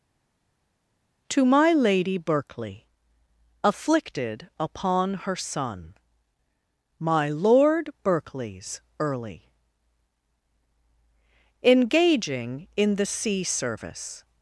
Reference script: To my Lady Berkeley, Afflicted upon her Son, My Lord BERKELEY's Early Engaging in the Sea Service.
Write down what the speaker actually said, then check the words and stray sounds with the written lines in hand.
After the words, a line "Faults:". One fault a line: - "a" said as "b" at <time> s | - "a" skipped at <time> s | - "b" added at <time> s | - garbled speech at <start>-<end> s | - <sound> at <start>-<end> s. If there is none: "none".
To my Lady Berkeley, Afflicted upon her Son, My Lord BERKELEY's Early Engaging in the Sea Service.
Faults:
none